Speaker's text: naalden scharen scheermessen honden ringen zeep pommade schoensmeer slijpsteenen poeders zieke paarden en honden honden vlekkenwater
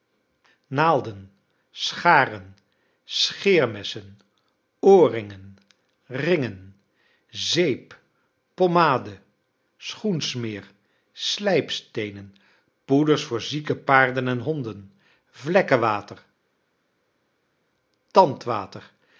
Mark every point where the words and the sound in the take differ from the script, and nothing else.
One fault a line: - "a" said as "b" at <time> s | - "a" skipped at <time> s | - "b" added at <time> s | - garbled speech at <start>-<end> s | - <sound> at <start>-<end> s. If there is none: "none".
- "honden" said as "oorringen" at 4.8 s
- "voor" added at 13.2 s
- "honden" skipped at 14.9 s